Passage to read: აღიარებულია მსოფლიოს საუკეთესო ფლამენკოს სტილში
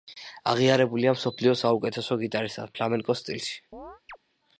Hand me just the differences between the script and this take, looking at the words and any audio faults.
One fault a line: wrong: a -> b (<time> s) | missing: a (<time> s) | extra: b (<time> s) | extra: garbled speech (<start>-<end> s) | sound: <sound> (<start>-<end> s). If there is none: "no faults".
extra: გიტარისტად (2.2 s)
sound: chirp (3.7-4.2 s)